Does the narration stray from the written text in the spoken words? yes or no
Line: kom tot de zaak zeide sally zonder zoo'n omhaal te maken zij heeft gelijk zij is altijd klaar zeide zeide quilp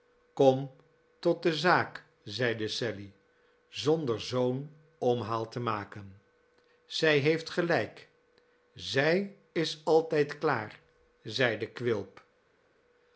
yes